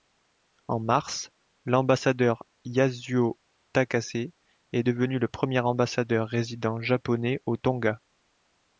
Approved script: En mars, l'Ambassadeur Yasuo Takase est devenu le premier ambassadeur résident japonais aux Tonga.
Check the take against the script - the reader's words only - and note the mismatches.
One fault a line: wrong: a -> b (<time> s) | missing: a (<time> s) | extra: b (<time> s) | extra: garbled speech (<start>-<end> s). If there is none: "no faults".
no faults